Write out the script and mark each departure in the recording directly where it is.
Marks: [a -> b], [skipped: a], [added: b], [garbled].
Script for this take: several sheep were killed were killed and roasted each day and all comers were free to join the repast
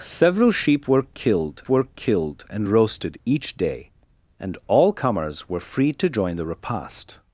several sheep were killed were killed and roasted each day and all comers were free to join the repast